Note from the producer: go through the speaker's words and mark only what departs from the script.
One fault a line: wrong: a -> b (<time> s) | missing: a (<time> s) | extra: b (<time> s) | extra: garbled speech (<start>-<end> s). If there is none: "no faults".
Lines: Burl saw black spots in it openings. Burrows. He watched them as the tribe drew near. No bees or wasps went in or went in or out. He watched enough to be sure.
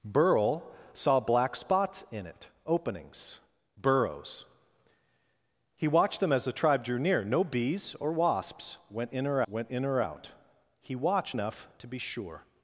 no faults